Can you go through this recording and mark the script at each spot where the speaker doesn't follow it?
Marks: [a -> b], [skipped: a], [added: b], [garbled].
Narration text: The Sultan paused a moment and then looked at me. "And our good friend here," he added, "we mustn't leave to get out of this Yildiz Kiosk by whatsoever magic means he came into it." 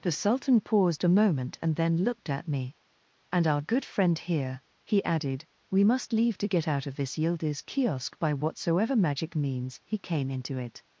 The Sultan paused a moment and then looked at me. "And our good friend here," he added, "we [mustn't -> must] leave to get out of this Yildiz Kiosk by whatsoever magic means he came into it."